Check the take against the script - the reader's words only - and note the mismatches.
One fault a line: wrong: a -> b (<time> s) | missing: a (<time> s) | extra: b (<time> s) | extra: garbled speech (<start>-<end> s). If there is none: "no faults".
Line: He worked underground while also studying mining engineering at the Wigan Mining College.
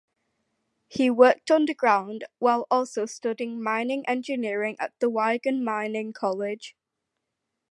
no faults